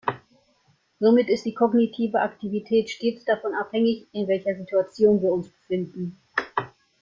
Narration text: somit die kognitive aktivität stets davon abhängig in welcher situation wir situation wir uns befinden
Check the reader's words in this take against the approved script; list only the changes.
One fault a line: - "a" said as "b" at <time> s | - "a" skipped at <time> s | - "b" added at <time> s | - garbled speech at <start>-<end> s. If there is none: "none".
- "ist" added at 1.3 s
- "situation wir" skipped at 5.3 s